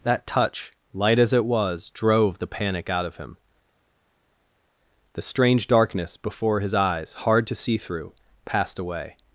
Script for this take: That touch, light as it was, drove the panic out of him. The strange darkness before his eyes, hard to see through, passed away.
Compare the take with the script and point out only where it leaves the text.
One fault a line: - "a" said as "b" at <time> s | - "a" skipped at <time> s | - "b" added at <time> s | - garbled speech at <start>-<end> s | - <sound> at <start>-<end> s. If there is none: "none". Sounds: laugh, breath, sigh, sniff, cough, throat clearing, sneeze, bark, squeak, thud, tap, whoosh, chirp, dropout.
none